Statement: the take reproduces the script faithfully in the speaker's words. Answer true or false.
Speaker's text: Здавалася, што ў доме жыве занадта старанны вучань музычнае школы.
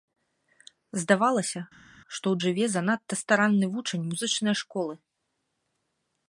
false